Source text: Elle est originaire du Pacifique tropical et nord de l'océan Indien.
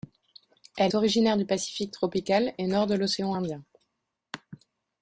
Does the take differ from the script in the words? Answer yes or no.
yes